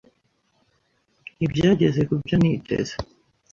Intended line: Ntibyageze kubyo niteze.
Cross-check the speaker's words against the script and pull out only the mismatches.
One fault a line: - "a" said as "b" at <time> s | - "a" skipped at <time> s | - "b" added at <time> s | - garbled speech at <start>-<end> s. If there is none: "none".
none